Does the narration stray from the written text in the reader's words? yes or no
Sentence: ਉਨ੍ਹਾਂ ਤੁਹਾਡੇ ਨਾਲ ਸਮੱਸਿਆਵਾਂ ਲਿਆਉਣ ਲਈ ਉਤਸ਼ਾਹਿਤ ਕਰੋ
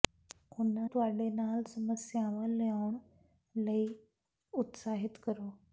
no